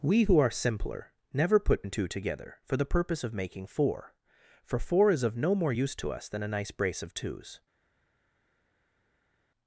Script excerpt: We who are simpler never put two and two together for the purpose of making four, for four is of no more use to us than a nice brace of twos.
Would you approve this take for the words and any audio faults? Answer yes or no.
no